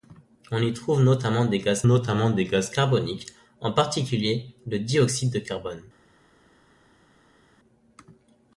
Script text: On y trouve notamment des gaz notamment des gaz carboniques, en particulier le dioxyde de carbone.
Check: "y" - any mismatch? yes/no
no